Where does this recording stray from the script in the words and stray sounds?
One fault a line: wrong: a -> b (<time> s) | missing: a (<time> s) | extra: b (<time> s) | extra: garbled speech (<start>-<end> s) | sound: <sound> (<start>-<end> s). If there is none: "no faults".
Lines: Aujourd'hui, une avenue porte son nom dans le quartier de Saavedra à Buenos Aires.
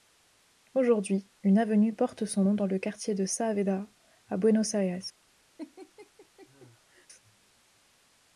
sound: laugh (5.6-7.1 s)